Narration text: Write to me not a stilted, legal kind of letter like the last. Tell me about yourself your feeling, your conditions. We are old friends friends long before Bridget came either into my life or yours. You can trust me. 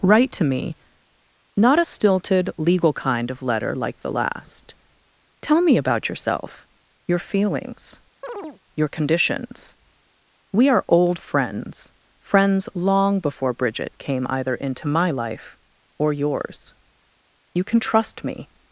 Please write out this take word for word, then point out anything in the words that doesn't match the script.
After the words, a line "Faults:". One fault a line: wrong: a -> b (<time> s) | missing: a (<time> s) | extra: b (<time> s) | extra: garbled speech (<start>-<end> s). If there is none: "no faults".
Write to me not a stilted, legal kind of letter like the last. Tell me about yourself your feelings, your conditions. We are old friends friends long before Bridget came either into my life or yours. You can trust me.
Faults:
wrong: feeling -> feelings (7.2 s)